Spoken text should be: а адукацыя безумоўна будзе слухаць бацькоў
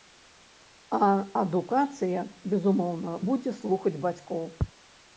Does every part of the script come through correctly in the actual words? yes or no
yes